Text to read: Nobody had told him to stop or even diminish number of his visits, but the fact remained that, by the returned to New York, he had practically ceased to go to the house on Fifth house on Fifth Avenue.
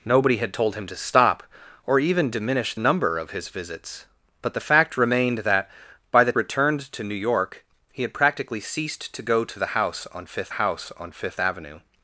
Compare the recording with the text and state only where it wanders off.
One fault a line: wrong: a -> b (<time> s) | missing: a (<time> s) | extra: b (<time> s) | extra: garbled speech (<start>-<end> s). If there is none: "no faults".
no faults